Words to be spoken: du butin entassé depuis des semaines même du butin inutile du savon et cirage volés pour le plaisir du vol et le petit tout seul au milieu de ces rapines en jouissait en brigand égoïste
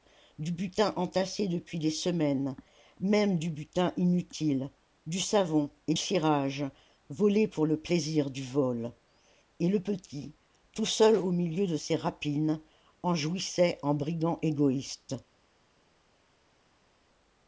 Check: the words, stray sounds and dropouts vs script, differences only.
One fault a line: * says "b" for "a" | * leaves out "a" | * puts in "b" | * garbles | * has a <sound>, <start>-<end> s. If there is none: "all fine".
all fine